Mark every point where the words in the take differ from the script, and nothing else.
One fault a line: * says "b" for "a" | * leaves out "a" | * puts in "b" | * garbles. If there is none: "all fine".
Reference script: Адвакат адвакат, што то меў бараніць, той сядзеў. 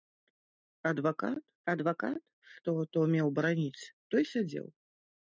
all fine